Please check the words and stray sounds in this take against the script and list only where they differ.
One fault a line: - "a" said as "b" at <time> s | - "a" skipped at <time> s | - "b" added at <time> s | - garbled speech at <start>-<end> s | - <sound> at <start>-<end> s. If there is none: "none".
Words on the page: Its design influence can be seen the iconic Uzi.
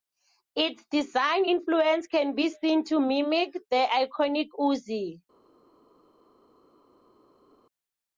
- "to mimic" added at 2.8 s